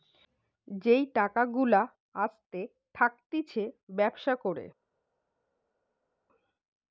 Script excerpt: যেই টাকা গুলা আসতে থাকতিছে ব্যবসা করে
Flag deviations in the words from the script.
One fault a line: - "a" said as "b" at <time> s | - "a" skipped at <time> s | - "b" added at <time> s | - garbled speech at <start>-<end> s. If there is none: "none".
none